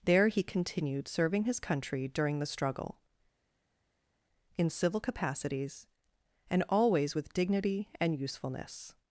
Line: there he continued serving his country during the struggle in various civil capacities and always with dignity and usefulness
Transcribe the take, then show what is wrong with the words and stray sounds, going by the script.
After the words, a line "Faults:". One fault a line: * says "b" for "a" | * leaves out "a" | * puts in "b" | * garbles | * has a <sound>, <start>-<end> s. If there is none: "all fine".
there he continued serving his country during the struggle in civil capacities and always with dignity and usefulness
Faults:
* leaves out "various"